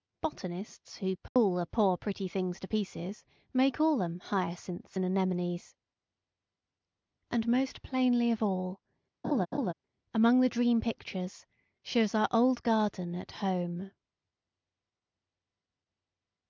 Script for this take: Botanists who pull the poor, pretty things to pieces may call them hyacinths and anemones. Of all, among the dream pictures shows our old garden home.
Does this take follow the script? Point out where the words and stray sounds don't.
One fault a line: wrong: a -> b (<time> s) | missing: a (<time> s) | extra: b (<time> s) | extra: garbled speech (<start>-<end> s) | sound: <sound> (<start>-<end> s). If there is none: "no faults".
sound: dropout (1.3-1.4 s)
extra: And most plainly (7.3 s)
sound: laugh (9.2-9.7 s)
extra: at (13.2 s)